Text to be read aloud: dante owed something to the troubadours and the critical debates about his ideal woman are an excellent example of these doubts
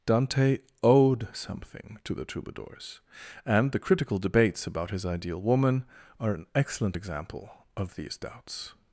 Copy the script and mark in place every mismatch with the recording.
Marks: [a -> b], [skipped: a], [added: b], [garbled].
dante owed something to the troubadours and the critical debates about his ideal woman are an excellent example of these doubts